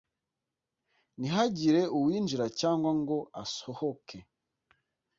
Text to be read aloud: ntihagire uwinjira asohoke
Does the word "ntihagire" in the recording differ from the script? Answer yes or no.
no